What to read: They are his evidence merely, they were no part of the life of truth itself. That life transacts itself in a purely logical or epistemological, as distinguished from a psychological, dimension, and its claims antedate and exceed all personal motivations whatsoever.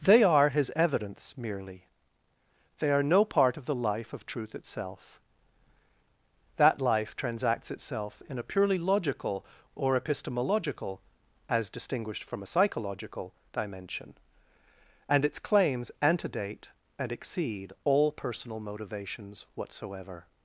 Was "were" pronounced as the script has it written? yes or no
no